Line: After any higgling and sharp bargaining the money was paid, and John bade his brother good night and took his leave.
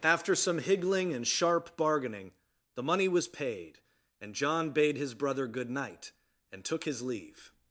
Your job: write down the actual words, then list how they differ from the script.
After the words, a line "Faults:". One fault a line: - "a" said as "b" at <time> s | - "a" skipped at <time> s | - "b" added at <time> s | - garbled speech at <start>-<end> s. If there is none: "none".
After some higgling and sharp bargaining the money was paid, and John bade his brother good night and took his leave.
Faults:
- "any" said as "some" at 0.3 s